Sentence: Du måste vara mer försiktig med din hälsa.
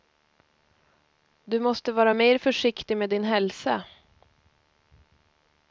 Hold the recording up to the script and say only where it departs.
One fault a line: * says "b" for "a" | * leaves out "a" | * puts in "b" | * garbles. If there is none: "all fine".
all fine